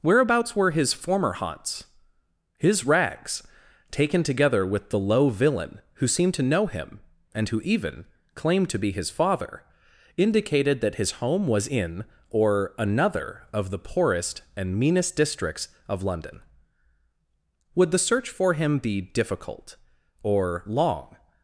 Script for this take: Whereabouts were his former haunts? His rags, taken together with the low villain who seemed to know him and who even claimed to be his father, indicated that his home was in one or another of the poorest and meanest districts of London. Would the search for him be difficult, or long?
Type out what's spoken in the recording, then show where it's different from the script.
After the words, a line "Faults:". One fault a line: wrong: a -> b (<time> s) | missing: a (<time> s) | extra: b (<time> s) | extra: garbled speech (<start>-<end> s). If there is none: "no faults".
Whereabouts were his former haunts? His rags, taken together with the low villain who seemed to know him and who even claimed to be his father, indicated that his home was in or another of the poorest and meanest districts of London. Would the search for him be difficult, or long?
Faults:
missing: one (12.0 s)